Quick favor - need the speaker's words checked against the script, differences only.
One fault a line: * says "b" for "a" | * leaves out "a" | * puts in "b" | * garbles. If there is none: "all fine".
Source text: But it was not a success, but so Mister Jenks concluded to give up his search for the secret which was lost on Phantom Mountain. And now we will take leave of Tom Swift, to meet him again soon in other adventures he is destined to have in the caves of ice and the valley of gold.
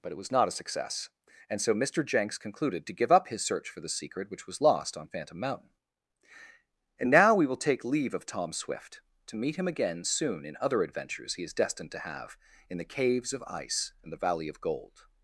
* says "and" for "but"